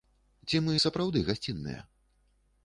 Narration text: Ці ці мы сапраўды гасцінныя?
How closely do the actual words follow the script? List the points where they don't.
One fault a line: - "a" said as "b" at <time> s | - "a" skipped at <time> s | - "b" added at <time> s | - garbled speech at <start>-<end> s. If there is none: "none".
- "ці" skipped at 0.6 s